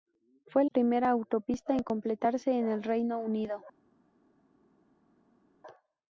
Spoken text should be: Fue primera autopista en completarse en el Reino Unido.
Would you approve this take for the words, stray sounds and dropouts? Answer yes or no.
yes